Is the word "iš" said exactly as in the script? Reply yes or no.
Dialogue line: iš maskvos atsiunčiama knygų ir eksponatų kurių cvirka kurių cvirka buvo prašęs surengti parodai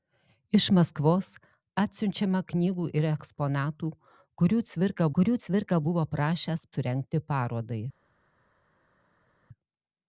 yes